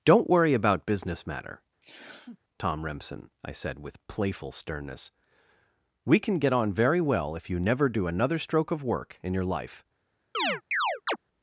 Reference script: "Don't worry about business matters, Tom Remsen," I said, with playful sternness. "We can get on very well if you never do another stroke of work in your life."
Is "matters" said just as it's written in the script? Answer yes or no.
no